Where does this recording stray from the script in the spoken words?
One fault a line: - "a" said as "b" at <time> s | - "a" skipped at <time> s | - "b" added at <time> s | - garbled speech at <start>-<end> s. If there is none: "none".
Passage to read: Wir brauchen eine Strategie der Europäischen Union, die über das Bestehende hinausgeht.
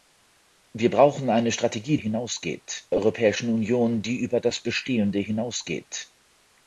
- "der" said as "hinausgeht" at 2.0 s